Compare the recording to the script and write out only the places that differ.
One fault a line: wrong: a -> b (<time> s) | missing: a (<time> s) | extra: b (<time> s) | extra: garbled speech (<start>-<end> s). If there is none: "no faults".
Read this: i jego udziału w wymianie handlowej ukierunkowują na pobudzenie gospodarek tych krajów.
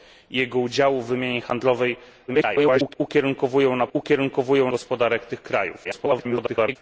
extra: garbled speech (2.3-3.0 s)
wrong: pobudzenie -> ukierunkowują (3.9 s)
extra: garbled speech (5.8-6.8 s)